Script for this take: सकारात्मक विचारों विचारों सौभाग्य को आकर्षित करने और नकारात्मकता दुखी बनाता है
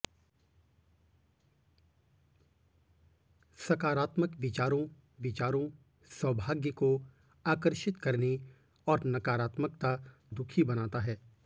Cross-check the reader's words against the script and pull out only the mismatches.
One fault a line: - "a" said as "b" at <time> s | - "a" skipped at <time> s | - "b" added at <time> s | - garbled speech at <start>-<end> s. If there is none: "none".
none